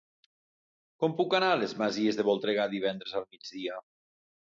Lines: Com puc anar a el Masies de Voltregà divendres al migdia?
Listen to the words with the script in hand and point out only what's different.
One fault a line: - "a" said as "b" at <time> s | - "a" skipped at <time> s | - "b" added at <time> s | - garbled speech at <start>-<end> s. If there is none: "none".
- "el" said as "les" at 1.6 s